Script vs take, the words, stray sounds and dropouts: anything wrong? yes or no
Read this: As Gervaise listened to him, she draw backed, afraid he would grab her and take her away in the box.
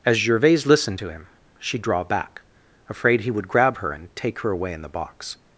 yes